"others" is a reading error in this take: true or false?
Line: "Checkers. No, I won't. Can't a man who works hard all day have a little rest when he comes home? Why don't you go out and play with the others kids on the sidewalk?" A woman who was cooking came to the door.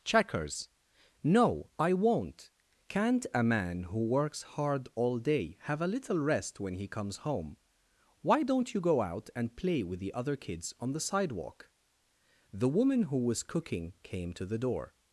true